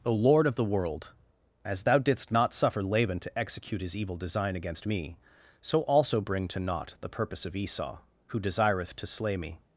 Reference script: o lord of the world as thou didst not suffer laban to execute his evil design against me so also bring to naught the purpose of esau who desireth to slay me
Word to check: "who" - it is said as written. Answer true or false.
true